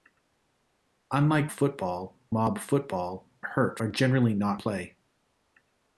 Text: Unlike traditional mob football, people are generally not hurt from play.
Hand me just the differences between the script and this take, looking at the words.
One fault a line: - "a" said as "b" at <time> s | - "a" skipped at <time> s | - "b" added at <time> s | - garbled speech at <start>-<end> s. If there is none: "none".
- "traditional" said as "football" at 1.5 s
- "people" said as "hurt" at 3.4 s
- "hurt from" skipped at 4.6 s